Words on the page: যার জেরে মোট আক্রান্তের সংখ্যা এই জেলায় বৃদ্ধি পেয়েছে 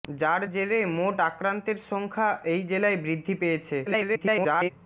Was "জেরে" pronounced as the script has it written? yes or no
yes